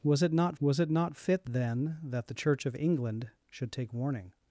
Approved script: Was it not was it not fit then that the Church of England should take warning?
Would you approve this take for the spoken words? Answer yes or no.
yes